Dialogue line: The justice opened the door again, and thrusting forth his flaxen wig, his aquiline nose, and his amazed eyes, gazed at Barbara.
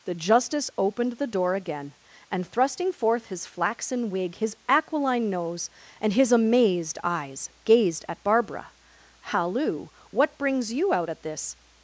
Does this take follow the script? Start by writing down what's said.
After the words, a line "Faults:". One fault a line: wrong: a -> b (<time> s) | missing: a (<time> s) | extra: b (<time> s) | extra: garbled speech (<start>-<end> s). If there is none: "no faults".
The justice opened the door again, and thrusting forth his flaxen wig, his aquiline nose, and his amazed eyes, gazed at Barbara. "Halloo! What brings you out at this
Faults:
extra: Halloo What brings you out at this (9.3 s)